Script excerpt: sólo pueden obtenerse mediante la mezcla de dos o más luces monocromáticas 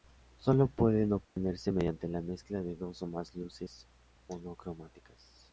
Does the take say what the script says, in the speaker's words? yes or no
yes